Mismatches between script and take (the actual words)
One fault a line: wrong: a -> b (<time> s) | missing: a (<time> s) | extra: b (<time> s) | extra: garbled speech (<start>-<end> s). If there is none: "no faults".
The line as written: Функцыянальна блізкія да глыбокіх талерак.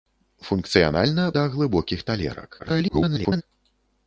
missing: блізкія (1.2 s)
extra: garbled speech (2.6-3.4 s)